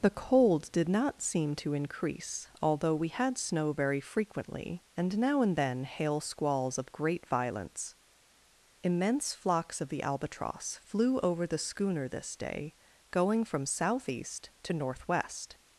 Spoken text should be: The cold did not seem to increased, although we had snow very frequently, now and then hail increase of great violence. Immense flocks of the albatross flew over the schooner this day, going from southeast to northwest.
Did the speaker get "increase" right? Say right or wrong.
wrong